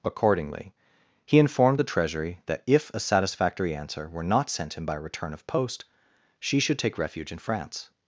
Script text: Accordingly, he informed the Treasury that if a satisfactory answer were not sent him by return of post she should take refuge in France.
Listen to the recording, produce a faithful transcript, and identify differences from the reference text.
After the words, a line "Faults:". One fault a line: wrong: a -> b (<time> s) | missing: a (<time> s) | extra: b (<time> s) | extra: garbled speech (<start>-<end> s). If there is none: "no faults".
Accordingly, he informed the Treasury that if a satisfactory answer were not sent him by return of post she should take refuge in France.
Faults:
no faults